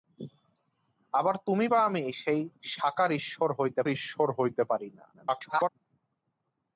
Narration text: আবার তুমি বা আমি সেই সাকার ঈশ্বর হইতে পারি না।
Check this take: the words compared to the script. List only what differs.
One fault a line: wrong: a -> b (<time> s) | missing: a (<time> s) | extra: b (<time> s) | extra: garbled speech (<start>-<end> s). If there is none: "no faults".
extra: ঈশ্বর হইতে (3.9 s)
extra: garbled speech (5.1-5.7 s)